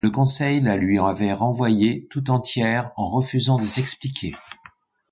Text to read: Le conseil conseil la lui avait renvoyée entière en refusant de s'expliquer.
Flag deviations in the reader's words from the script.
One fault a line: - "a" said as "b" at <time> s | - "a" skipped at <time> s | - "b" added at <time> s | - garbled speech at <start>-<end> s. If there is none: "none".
- "conseil" skipped at 0.6 s
- "tout" added at 2.1 s